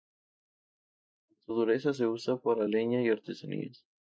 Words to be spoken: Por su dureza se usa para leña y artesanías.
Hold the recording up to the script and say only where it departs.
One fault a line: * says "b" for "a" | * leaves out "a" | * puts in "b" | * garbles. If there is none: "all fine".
all fine